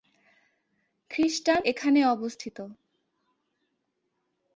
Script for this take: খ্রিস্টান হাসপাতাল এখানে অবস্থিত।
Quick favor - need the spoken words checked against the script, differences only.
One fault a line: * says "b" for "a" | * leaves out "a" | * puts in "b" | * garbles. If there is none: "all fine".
* leaves out "হাসপাতাল"